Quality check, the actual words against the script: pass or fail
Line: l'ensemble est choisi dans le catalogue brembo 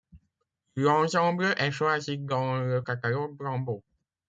pass